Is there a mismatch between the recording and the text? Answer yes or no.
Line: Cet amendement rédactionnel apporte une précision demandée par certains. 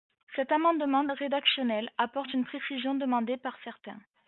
no